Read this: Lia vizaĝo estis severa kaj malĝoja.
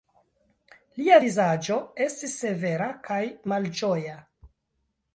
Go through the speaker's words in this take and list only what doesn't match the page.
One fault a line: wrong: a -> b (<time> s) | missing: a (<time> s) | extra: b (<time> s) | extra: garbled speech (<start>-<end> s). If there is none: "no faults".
no faults